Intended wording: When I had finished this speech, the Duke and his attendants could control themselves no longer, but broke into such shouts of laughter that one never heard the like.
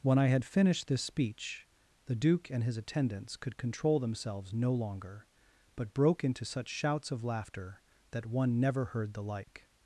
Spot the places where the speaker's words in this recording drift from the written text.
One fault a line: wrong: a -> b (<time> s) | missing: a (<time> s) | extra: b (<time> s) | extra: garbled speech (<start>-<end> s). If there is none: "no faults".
no faults